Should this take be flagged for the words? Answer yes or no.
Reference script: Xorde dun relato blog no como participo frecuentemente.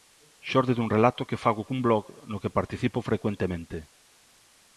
yes